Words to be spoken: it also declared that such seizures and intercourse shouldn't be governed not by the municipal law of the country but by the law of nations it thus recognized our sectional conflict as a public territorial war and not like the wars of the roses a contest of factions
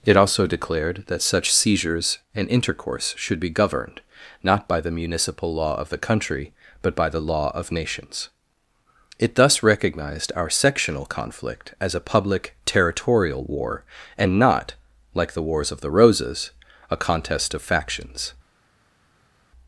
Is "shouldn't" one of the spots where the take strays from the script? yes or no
yes